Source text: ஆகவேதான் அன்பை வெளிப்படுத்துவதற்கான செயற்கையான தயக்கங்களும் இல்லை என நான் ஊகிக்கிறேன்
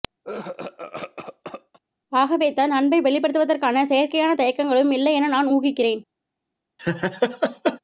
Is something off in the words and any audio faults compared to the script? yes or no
yes